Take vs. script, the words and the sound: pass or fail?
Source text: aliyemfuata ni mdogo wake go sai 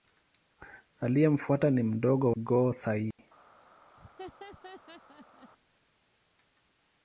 fail